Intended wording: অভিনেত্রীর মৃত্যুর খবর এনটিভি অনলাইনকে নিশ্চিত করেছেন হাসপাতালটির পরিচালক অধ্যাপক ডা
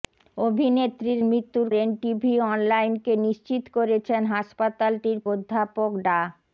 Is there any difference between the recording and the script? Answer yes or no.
yes